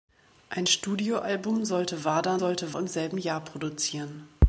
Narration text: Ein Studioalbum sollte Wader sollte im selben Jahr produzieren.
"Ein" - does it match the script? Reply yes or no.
yes